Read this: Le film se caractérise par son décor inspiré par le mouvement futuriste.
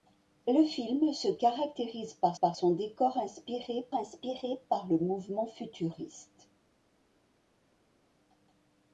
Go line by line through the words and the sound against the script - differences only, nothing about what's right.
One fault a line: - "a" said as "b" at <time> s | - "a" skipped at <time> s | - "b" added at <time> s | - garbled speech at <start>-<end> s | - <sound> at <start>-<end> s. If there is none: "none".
- "par" added at 2.3 s
- "inspiré" added at 3.9 s